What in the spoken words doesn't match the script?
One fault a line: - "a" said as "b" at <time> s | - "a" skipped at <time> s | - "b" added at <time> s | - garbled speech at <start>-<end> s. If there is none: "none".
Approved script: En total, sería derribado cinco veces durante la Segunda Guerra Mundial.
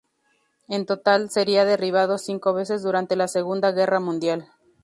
none